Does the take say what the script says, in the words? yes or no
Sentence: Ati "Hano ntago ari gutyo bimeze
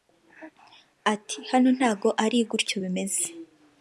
yes